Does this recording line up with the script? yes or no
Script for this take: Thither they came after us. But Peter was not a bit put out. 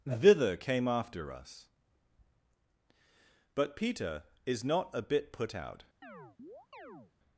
no